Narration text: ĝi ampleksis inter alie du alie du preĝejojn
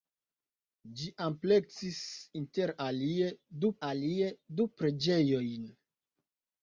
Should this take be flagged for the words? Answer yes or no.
no